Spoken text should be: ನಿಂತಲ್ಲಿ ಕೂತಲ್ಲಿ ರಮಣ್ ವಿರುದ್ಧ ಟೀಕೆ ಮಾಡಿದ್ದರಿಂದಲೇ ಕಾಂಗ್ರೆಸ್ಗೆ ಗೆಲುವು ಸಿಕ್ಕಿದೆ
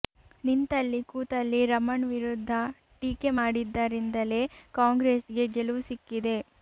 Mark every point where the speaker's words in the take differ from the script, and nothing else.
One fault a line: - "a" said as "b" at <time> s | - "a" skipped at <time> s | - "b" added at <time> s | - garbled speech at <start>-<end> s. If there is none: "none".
none